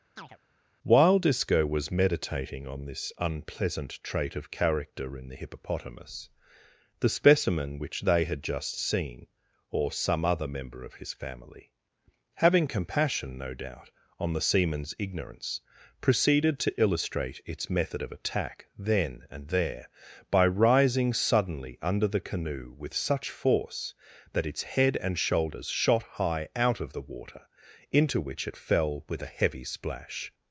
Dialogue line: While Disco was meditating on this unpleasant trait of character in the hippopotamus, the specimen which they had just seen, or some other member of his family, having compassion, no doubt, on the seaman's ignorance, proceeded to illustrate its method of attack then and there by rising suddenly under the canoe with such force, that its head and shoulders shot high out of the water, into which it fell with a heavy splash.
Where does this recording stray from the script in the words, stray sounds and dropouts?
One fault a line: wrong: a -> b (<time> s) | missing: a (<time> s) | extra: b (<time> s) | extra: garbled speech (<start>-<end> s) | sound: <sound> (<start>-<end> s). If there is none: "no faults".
sound: chirp (0.2-0.4 s)